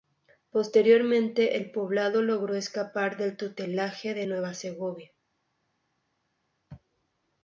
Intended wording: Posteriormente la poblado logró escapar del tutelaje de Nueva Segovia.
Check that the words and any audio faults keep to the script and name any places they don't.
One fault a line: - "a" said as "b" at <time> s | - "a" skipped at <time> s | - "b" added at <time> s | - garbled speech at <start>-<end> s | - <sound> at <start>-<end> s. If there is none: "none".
- "la" said as "el" at 1.6 s